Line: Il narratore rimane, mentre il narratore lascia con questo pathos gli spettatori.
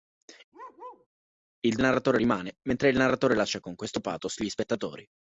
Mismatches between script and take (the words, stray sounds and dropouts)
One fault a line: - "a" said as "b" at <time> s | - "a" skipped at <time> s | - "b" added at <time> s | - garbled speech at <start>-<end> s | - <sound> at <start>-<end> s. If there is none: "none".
- bark at 0.5-1.1 s